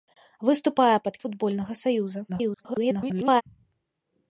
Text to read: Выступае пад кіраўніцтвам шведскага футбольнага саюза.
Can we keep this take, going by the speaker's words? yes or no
no